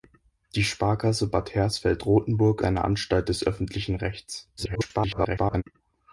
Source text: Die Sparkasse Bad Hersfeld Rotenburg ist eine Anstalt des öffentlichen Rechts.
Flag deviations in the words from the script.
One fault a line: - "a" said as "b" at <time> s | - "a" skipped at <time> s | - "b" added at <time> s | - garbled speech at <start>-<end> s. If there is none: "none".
- "ist" skipped at 2.6 s
- garbled speech at 4.6-5.6 s